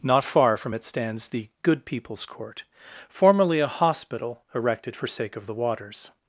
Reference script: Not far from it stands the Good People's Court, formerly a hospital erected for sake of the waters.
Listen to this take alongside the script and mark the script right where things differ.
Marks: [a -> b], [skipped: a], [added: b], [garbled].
Not far from it stands the Good People's Court, formerly a hospital erected for sake of the waters.